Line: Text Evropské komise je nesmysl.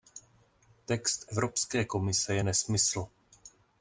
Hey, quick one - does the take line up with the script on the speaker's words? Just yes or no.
yes